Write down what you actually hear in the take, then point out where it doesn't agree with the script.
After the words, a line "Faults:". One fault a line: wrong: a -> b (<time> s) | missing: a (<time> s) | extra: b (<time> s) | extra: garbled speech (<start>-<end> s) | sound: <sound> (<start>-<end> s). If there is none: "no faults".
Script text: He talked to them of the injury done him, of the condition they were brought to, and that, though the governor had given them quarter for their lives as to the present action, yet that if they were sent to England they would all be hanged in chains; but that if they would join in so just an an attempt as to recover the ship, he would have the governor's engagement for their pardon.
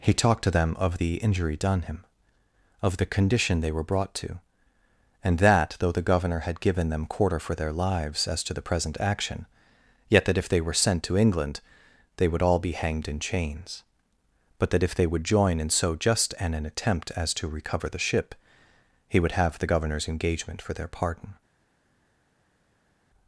He talked to them of the injury done him, of the condition they were brought to, and that, though the governor had given them quarter for their lives as to the present action, yet that if they were sent to England they would all be hanged in chains; but that if they would join in so just an an attempt as to recover the ship, he would have the governor's engagement for their pardon.
Faults:
no faults